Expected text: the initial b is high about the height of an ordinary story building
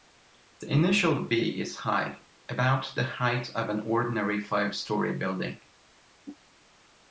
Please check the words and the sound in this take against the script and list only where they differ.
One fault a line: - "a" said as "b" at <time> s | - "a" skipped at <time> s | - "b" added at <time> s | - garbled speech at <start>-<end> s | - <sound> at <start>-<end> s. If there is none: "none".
- "five" added at 4.4 s